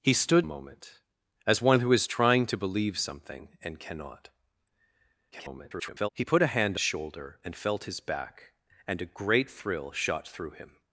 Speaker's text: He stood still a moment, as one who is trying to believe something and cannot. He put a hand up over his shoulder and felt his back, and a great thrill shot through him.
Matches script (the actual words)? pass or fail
fail